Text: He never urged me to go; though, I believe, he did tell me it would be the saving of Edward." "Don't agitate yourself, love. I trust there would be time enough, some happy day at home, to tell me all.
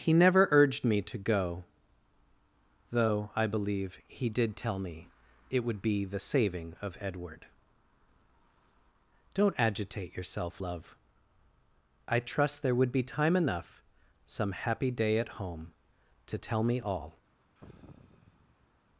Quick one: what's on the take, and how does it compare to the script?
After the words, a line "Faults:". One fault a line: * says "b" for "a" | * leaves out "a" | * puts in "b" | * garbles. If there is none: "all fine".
He never urged me to go; though, I believe, he did tell me it would be the saving of Edward." "Don't agitate yourself, love. I trust there would be time enough, some happy day at home, to tell me all.
Faults:
all fine